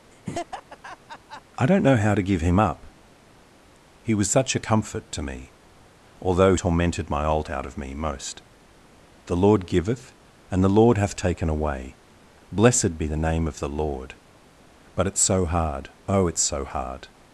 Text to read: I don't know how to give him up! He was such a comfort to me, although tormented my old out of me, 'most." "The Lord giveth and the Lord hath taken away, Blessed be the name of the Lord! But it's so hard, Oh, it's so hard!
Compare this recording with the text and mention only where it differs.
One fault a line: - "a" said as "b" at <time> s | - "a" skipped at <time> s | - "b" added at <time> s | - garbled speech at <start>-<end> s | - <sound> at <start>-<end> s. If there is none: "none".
- laugh at 0.1-1.4 s